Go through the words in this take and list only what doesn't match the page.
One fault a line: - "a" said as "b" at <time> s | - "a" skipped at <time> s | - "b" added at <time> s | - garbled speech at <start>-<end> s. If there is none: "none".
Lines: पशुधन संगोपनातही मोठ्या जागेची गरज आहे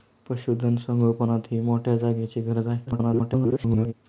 - garbled speech at 2.9-3.9 s